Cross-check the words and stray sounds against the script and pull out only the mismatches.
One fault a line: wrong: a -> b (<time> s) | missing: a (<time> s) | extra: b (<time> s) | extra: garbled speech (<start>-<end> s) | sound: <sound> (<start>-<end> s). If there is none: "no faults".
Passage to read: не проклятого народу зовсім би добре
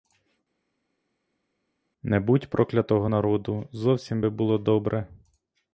extra: будь (2.2 s)
extra: було (4.3 s)